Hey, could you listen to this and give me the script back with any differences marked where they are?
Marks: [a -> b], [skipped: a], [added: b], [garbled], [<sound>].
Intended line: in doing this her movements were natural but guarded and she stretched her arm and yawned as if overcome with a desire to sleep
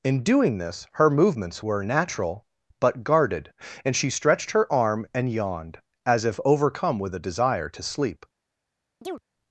in doing this her movements were natural but guarded and she stretched her arm and yawned as if overcome with a desire to sleep [chirp]